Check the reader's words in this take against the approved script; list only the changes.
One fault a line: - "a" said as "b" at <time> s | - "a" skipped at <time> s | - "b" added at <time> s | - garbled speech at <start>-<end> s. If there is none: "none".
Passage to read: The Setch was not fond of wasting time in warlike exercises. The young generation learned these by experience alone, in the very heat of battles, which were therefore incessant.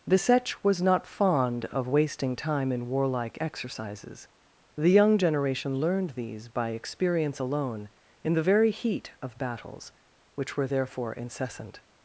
none